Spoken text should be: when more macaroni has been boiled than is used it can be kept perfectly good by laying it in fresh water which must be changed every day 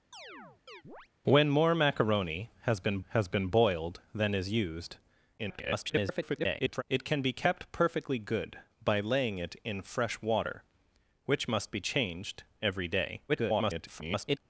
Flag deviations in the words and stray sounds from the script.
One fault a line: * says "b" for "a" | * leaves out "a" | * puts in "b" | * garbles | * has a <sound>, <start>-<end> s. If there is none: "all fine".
* has a chirp, 0.1-1.1 s
* puts in "has been"
* garbles
* garbles